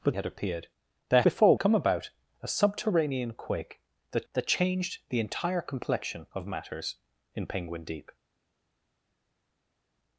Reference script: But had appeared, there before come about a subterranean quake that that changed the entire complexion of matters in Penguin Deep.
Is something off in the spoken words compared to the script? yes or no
no